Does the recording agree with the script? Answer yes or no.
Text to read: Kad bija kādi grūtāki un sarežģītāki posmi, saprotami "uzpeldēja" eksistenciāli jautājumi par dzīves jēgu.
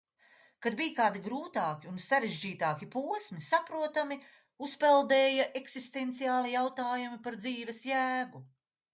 yes